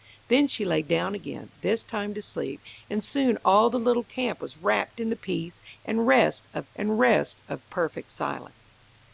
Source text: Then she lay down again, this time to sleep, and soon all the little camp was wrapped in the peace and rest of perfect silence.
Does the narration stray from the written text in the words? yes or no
yes